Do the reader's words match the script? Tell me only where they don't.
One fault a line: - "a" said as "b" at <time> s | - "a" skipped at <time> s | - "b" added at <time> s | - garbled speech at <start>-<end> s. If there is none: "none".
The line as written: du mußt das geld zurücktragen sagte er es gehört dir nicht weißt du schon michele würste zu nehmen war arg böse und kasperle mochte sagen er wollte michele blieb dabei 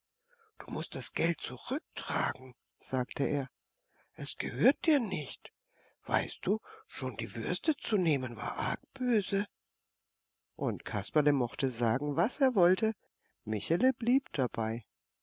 - "michele" said as "die" at 7.2 s
- "was" added at 12.2 s